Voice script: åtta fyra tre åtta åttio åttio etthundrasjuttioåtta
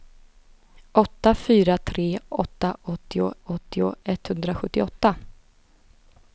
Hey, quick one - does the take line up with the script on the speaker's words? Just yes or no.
yes